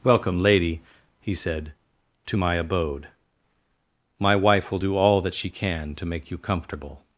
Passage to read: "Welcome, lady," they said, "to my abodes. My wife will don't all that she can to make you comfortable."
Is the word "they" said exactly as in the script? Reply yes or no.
no